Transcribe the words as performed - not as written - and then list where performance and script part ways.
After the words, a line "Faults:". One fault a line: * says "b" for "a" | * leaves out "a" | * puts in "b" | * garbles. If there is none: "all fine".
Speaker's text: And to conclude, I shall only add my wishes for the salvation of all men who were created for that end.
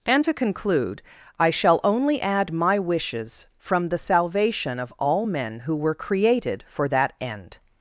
And to conclude, I shall only add my wishes from the salvation of all men who were created for that end.
Faults:
* says "from" for "for"